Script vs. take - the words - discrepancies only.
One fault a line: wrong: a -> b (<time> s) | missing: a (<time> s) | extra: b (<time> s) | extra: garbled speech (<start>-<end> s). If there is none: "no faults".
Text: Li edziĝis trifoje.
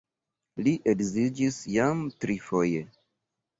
extra: jam (1.8 s)